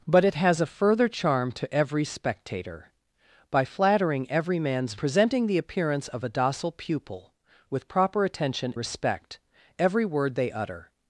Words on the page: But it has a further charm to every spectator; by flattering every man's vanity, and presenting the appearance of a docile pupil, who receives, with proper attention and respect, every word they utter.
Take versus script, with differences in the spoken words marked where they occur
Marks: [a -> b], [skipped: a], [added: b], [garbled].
But it has a further charm to every spectator; by flattering every man's [skipped: vanity, and] presenting the appearance of a docile pupil, [skipped: who receives,] with proper attention [skipped: and] respect, every word they utter.